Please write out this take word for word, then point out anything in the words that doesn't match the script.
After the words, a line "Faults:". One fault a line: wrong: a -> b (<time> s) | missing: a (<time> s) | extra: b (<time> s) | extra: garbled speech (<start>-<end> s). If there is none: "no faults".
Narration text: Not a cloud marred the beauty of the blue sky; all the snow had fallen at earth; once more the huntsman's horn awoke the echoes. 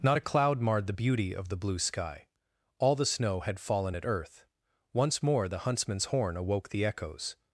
Not a cloud marred the beauty of the blue sky; all the snow had fallen at earth; once more the huntsman's horn awoke the echoes.
Faults:
no faults